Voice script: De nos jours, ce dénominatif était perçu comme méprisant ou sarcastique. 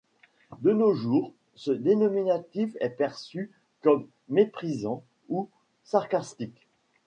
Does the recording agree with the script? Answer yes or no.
no